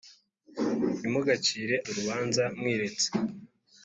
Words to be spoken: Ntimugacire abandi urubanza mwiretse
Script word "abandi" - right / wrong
wrong